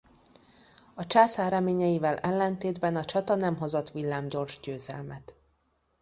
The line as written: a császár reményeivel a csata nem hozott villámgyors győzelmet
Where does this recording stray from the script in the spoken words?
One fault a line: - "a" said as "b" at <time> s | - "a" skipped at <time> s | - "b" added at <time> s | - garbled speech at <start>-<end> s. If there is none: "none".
- "ellentétben" added at 2.2 s